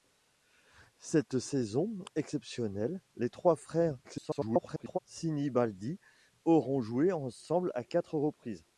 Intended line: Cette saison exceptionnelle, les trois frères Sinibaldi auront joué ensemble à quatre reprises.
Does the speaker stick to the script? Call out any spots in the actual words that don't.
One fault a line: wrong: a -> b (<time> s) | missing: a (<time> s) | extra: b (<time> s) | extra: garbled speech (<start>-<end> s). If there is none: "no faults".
extra: garbled speech (4.0-5.0 s)